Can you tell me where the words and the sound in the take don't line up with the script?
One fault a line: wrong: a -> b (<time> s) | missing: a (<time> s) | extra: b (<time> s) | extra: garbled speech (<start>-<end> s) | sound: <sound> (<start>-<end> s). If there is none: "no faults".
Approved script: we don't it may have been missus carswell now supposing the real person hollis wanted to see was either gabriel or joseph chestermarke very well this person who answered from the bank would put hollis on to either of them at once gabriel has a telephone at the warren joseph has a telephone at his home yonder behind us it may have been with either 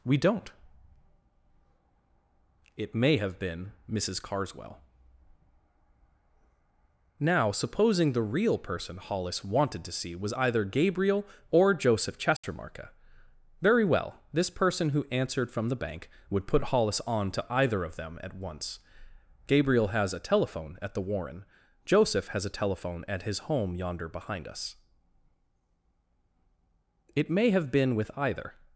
sound: dropout (12.4-12.4 s)